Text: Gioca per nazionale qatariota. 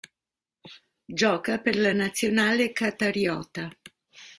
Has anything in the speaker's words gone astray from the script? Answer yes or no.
yes